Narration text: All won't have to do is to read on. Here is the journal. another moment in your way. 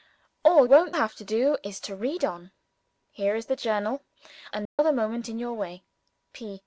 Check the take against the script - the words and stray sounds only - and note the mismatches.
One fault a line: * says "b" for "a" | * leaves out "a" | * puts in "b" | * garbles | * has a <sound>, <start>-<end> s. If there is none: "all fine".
* has a dropout, 4.7-4.8 s